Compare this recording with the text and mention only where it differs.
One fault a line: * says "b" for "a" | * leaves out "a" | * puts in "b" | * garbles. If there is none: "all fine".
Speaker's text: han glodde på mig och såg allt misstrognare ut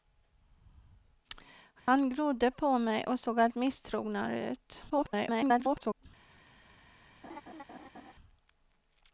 * garbles